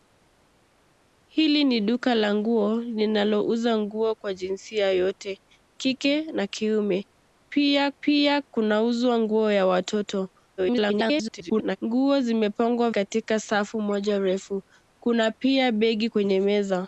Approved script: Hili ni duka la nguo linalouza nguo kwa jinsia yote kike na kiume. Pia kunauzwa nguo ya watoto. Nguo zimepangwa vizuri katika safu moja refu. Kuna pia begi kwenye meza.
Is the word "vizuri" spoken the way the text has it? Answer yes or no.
no